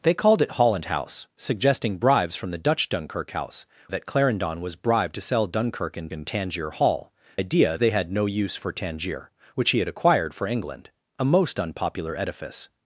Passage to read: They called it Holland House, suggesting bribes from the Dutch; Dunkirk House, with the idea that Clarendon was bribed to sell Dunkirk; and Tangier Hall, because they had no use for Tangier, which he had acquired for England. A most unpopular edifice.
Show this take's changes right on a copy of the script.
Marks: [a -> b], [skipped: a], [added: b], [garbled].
They called it Holland House, suggesting bribes from the Dutch; Dunkirk House, [skipped: with the idea] that Clarendon was bribed to sell Dunkirk; and [added: and] Tangier Hall, [because -> idea] they had no use for Tangier, which he had acquired for England. A most unpopular edifice.